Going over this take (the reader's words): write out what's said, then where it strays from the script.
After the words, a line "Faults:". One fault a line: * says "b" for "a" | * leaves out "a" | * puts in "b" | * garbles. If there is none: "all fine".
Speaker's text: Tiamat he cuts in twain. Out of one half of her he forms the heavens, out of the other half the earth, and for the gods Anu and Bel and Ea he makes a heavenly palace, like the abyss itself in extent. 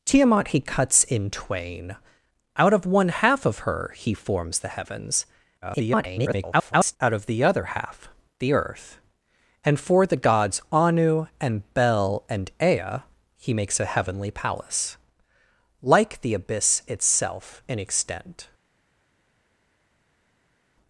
Tiamat he cuts in twain. Out of one half of her he forms the heavens, [garbled] out of the other half the earth, and for the gods Anu and Bel and Ea he makes a heavenly palace, like the abyss itself in extent.
Faults:
* garbles